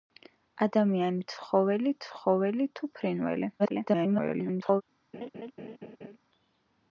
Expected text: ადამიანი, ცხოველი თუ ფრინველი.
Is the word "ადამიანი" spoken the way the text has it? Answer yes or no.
yes